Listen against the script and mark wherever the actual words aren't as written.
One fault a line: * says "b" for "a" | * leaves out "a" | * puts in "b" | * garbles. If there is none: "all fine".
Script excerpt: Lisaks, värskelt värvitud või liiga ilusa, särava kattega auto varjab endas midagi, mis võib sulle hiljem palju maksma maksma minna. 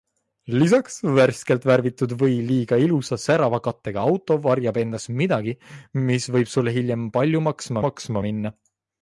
all fine